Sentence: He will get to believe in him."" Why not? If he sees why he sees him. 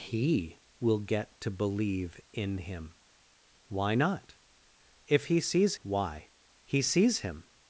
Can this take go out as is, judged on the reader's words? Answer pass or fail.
pass